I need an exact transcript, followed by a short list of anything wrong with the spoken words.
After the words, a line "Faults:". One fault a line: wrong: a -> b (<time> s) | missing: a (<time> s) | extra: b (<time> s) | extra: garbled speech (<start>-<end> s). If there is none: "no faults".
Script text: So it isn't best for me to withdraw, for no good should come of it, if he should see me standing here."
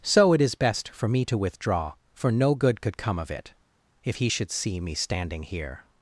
So it is best for me to withdraw, for no good could come of it, if he should see me standing here."
Faults:
wrong: isn't -> is (0.4 s)
wrong: should -> could (2.8 s)